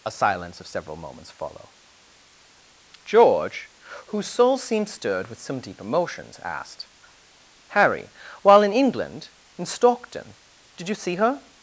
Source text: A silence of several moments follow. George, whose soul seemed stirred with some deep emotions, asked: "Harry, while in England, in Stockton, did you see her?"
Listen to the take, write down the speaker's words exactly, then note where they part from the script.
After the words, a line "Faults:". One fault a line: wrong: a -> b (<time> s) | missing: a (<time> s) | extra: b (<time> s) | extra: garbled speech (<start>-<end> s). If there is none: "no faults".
A silence of several moments follow. George, whose soul seemed stirred with some deep emotions, asked: "Harry, while in England, in Stockton, did you see her?"
Faults:
no faults